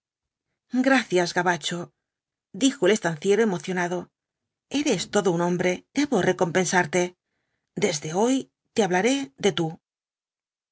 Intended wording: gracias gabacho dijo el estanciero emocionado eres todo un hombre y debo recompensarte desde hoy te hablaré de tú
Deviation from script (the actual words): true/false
true